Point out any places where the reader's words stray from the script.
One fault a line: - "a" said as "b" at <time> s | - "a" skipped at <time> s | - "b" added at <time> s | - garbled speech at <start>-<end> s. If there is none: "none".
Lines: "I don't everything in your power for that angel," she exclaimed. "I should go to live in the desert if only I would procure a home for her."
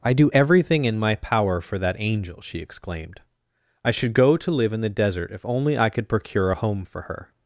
- "don't" said as "do" at 0.1 s
- "your" said as "my" at 1.0 s
- "would" said as "could" at 5.9 s